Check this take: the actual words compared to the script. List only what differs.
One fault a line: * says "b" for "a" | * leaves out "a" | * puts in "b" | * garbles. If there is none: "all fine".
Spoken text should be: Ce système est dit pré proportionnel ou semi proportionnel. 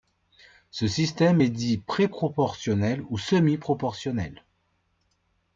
all fine